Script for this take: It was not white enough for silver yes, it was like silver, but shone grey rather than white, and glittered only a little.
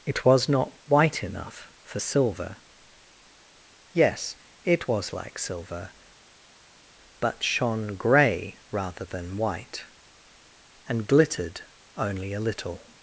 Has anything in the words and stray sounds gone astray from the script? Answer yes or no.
no